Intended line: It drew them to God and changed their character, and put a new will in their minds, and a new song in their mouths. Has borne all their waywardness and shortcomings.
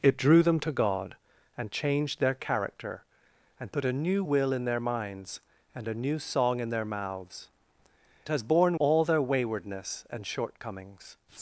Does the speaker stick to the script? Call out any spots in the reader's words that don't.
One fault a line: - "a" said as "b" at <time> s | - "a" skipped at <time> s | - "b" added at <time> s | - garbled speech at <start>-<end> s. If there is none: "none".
none